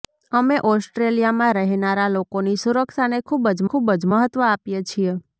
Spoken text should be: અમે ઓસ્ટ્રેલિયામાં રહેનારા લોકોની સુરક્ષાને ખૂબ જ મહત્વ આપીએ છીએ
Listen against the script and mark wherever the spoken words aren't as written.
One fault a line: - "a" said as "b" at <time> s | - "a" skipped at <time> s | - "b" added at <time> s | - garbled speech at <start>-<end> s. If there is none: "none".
- "ખૂબ જ" added at 3.6 s